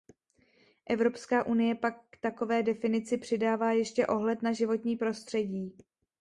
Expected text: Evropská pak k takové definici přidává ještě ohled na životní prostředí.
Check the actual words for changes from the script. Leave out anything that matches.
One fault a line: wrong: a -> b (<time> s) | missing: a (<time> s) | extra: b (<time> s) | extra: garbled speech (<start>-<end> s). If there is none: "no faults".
extra: unie (1.4 s)